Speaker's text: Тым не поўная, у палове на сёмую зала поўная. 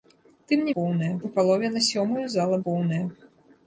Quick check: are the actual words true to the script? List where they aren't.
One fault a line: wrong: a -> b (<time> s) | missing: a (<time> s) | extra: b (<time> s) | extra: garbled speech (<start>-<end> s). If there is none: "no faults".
no faults